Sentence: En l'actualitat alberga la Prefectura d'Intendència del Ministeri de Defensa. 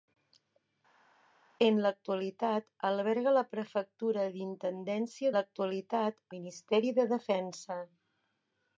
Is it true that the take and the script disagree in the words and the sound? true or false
true